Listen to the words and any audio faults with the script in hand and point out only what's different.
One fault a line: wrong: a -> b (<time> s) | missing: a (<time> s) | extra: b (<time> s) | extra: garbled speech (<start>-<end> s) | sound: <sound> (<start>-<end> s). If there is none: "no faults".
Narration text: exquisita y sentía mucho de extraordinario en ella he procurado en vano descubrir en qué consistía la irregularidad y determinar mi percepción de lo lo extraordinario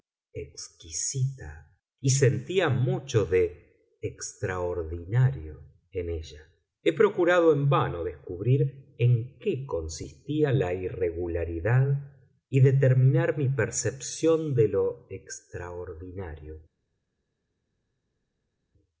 missing: lo (15.1 s)